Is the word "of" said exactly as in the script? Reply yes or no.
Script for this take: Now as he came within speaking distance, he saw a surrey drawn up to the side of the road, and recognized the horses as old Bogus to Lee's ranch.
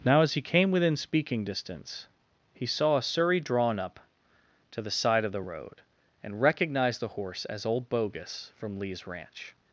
yes